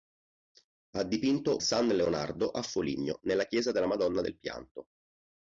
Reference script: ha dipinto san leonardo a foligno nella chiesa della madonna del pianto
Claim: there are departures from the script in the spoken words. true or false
false